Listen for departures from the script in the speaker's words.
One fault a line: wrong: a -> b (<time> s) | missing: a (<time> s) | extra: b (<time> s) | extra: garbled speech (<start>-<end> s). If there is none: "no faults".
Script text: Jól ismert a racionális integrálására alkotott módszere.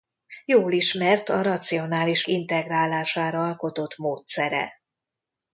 no faults